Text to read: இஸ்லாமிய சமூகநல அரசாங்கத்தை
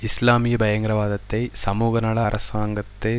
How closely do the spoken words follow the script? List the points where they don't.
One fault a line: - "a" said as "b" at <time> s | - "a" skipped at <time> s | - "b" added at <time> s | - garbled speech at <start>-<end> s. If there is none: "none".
- "பயங்கரவாதத்தை" added at 0.6 s